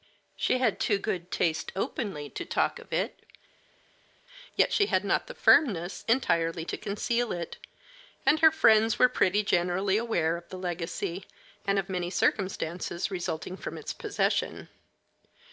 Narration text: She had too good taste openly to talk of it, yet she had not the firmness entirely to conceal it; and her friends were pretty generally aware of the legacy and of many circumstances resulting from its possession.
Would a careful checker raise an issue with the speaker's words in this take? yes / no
no